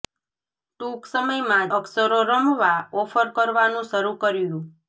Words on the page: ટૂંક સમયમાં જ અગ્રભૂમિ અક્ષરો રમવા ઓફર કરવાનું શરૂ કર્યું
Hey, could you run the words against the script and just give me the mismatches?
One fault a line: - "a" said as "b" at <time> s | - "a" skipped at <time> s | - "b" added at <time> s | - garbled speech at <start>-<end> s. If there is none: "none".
- "જ અગ્રભૂમિ" skipped at 1.7 s